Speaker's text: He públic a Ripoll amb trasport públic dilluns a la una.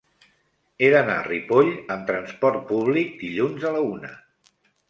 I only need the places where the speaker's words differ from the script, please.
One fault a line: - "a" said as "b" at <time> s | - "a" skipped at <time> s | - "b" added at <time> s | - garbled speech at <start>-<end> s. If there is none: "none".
- "públic" said as "d'anar" at 0.9 s